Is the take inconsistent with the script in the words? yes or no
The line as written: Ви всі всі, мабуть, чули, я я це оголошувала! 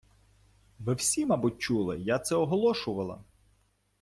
yes